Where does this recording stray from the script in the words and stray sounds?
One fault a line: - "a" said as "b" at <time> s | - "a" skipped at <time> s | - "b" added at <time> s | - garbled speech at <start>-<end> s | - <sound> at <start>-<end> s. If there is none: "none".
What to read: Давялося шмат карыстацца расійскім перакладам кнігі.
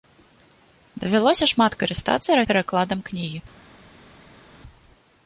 - "расійскім" skipped at 2.4 s